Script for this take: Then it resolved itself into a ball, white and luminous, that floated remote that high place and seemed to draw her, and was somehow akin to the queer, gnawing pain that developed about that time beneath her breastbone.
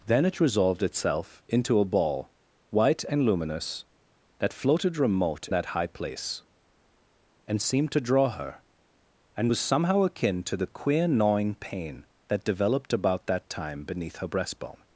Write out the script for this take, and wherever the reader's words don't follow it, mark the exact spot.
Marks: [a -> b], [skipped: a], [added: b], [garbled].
Then it resolved itself into a ball, white and luminous, that floated remote that high place and seemed to draw her, and was somehow akin to the queer, gnawing pain that developed about that time beneath her breastbone.